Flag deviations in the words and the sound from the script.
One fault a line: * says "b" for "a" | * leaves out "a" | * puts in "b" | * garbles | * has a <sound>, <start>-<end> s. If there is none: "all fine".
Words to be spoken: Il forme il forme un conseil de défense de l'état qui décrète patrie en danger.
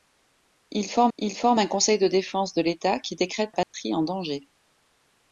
* has a dropout, 3.6-3.7 s